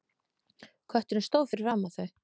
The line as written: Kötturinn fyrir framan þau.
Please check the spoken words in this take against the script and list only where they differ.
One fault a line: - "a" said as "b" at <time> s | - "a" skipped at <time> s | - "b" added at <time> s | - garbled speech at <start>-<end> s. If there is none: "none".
- "stóð" added at 1.3 s